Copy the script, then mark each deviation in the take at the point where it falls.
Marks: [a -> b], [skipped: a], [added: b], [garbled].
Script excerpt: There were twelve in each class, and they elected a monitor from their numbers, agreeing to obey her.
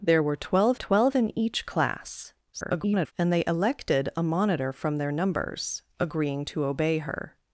There were twelve [added: twelve] in each class, [garbled] and they elected a monitor from their numbers, agreeing to obey her.